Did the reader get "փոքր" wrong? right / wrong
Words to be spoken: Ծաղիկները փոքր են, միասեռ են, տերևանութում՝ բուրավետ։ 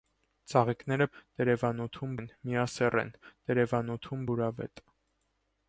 wrong